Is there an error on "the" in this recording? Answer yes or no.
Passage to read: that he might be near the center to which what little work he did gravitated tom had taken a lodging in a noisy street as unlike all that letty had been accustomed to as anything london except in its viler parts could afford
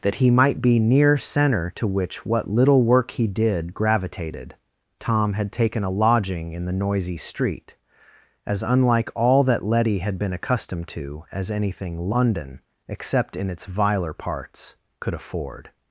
yes